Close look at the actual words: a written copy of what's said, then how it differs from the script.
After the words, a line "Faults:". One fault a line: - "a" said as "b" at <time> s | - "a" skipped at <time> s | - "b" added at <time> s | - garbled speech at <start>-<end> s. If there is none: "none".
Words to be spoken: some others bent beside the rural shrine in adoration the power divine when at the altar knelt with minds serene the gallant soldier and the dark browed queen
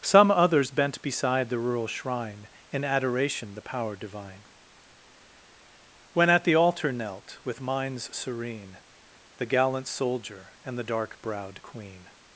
some others bent beside the rural shrine in adoration the power divine when at the altar knelt with minds serene the gallant soldier and the dark browed queen
Faults:
none